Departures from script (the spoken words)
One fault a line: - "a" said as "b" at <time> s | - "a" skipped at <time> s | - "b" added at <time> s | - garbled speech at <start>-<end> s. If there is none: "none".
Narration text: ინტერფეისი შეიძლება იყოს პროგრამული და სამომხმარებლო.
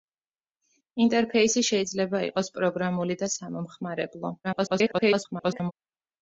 - garbled speech at 4.4-5.7 s